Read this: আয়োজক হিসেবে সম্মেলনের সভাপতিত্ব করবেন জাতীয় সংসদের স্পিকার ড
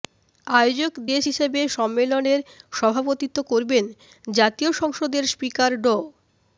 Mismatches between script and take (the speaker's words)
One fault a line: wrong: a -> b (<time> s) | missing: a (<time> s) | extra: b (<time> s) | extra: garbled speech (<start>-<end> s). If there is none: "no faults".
extra: দেশ (1.1 s)